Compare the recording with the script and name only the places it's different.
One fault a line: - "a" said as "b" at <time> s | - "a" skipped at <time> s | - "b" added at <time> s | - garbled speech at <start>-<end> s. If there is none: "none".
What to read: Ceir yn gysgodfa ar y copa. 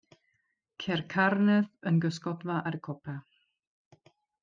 - "carnedd" added at 1.1 s